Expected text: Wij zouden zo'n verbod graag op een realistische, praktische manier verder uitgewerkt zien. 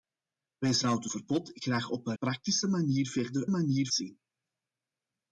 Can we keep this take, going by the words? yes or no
no